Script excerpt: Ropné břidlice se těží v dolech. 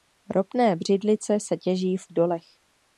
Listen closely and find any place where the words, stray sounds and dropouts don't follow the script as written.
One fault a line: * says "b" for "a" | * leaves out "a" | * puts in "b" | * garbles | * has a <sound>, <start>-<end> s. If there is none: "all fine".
all fine